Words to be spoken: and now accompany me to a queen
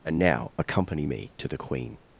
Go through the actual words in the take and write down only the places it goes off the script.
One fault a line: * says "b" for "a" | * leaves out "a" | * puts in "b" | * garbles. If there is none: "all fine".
* says "the" for "a"